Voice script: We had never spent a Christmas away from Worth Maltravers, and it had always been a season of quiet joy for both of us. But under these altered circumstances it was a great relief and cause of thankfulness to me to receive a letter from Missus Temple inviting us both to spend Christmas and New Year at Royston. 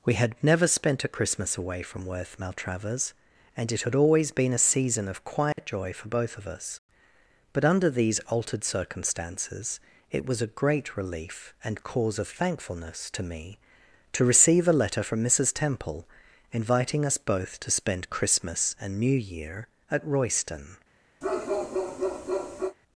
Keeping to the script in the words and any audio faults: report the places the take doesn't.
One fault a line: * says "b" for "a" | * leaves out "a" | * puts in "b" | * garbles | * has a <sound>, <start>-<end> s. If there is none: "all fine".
* has a dropout, 5.5-5.6 s
* has a bark, 21.2-22.8 s